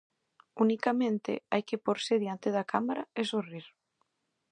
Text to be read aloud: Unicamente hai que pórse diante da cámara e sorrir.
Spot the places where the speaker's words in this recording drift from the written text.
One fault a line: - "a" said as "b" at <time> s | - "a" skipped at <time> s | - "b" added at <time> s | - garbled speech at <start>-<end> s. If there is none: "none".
none